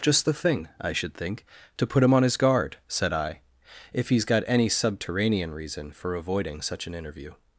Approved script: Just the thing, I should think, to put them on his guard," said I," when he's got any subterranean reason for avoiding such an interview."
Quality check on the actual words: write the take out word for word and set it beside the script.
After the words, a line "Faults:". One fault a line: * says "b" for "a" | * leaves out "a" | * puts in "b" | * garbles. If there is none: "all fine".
Just the thing, I should think, to put him on his guard," said I," if he's got any subterranean reason for avoiding such an interview."
Faults:
* says "him" for "them"
* says "if" for "when"